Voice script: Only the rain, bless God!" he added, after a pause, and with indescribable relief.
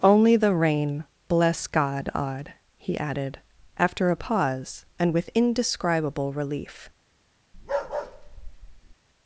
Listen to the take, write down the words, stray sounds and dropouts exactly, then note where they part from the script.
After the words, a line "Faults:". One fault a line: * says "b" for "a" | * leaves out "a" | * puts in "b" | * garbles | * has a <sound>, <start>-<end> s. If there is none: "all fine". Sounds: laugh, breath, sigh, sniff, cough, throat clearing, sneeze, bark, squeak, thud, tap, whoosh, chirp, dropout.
Only the rain, bless God!" odd he added, after a pause, and with indescribable relief.
Faults:
* puts in "odd"
* has a bark, 7.5-9.0 s